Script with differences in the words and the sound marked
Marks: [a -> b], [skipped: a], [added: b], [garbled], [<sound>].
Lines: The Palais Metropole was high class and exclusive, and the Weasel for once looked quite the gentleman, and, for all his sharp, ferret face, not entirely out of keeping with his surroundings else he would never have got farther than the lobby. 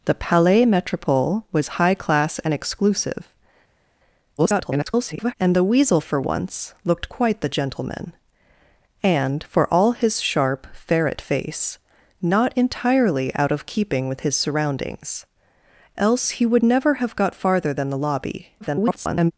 The Palais Metropole was high class and exclusive, [garbled] and the Weasel for once looked quite the gentleman, and, for all his sharp, ferret face, not entirely out of keeping with his surroundings else he would never have got farther than the lobby. [garbled]